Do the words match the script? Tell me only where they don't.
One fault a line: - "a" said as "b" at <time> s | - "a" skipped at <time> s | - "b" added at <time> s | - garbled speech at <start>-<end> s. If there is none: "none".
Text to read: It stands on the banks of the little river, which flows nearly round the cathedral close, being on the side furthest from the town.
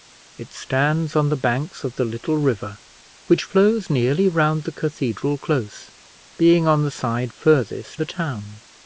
- "from" skipped at 8.0 s